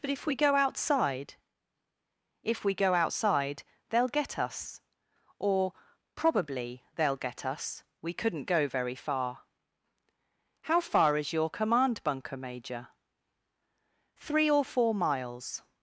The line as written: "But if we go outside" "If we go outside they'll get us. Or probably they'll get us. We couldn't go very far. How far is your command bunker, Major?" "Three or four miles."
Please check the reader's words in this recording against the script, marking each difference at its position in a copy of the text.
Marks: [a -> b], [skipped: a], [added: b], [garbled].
"But if we go outside" "If we go outside they'll get us. Or probably they'll get us. We couldn't go very far. How far is your command bunker, Major?" "Three or four miles."